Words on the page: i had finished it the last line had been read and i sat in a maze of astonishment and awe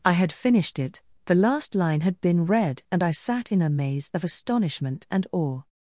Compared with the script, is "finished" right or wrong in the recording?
right